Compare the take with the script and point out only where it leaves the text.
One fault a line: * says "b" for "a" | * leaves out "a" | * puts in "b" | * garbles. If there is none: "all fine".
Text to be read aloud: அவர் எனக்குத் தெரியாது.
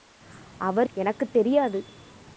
all fine